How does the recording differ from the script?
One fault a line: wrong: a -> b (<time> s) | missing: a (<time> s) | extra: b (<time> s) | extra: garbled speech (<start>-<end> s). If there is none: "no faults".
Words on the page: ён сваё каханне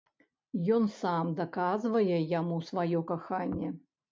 extra: сам даказвае яму (1.0 s)